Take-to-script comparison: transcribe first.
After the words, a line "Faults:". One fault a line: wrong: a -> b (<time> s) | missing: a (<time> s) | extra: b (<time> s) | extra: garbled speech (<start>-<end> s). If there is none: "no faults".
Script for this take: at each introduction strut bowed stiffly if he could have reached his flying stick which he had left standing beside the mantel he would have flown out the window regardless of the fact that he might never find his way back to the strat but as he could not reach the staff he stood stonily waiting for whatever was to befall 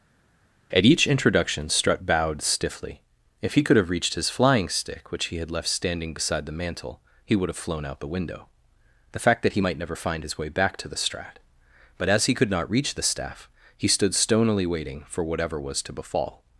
at each introduction strut bowed stiffly if he could have reached his flying stick which he had left standing beside the mantel he would have flown out the window the fact that he might never find his way back to the strat but as he could not reach the staff he stood stonily waiting for whatever was to befall
Faults:
missing: regardless of (8.5 s)